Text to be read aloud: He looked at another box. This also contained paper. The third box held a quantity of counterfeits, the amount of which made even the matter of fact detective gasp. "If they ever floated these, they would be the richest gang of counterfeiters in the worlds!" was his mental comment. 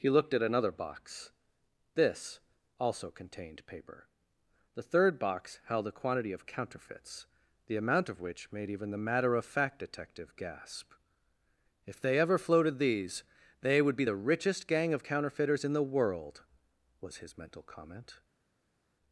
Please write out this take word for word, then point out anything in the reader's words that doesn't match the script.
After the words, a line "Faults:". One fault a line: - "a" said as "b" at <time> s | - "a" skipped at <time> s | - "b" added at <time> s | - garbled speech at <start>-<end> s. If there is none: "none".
He looked at another box. This also contained paper. The third box held a quantity of counterfeits, the amount of which made even the matter of fact detective gasp. "If they ever floated these, they would be the richest gang of counterfeiters in the world!" was his mental comment.
Faults:
- "worlds" said as "world" at 15.8 s